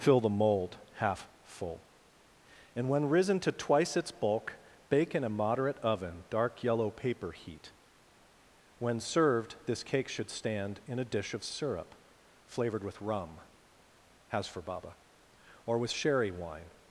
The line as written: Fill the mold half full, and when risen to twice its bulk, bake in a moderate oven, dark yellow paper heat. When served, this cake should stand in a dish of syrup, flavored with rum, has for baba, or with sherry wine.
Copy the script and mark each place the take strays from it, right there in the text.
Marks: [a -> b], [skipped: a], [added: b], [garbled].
Fill the mold half full, and when risen to twice its bulk, bake in a moderate oven, dark yellow paper heat. When served, this cake should stand in a dish of syrup, flavored with rum, has for baba, or with sherry wine.